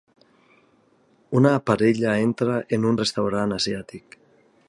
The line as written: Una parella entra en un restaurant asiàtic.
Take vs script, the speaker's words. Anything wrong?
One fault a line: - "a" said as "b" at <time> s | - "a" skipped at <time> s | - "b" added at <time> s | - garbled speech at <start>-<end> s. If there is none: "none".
none